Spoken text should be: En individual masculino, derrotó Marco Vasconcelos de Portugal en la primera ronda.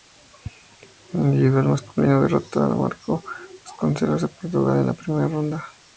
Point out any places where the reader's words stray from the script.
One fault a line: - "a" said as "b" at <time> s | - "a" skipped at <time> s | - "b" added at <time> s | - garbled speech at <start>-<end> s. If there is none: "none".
- "a" added at 2.6 s